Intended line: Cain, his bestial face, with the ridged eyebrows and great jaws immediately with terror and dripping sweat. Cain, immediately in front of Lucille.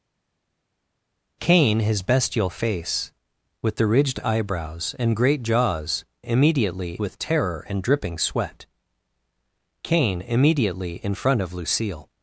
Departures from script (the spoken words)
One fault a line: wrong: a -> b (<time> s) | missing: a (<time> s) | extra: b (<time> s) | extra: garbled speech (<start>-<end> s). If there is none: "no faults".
no faults